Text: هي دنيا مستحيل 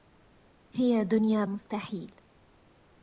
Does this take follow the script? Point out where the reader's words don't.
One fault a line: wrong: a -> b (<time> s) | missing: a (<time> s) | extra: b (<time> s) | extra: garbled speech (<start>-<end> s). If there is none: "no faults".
no faults